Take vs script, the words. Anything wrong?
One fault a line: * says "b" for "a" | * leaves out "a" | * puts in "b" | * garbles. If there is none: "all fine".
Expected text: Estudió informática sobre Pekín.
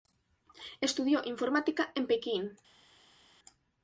* says "en" for "sobre"